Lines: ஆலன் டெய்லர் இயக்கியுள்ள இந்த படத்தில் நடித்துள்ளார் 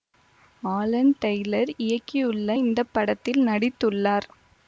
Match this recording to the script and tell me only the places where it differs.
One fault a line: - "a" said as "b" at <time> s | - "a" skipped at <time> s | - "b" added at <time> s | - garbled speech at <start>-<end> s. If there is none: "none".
none